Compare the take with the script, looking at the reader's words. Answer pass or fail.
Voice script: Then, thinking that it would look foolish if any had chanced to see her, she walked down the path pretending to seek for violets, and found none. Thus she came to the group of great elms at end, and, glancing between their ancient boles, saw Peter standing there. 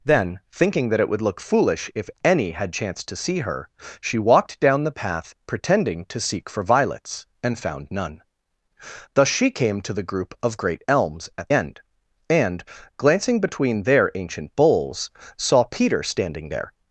pass